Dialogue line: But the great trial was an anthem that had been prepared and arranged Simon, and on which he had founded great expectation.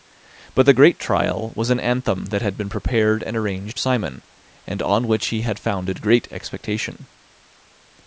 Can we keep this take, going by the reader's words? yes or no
yes